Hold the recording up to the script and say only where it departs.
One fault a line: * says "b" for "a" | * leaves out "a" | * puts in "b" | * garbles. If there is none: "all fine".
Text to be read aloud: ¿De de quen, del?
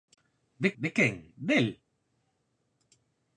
all fine